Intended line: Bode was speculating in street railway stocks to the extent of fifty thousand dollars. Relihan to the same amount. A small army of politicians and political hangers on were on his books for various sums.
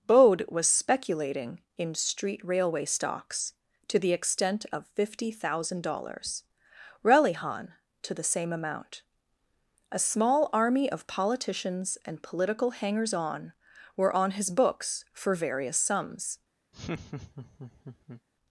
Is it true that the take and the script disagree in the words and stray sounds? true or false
true